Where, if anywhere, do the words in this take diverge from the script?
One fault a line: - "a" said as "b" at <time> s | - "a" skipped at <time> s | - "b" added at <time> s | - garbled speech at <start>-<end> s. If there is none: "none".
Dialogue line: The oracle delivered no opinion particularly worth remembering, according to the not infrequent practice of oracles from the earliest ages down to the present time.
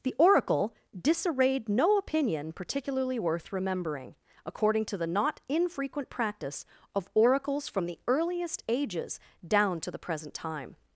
- "delivered" said as "disarrayed" at 1.0 s